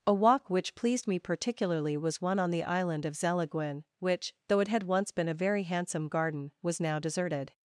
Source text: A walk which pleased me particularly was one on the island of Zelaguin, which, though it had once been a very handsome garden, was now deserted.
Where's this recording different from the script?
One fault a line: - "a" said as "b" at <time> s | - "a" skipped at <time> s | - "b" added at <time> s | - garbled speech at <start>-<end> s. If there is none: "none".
none